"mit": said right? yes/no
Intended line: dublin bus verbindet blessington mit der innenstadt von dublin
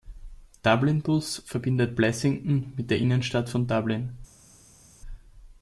yes